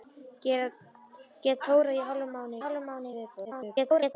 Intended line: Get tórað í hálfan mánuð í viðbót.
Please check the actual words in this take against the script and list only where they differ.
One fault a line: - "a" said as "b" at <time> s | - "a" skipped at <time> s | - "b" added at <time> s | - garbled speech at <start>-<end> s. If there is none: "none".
- "hálfan mánuð" added at 2.6 s
- garbled speech at 3.4-4.1 s